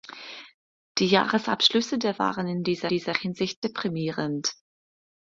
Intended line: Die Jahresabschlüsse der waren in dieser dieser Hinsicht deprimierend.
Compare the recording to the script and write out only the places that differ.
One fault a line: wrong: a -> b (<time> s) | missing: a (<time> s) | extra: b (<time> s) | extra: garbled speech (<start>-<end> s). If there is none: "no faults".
no faults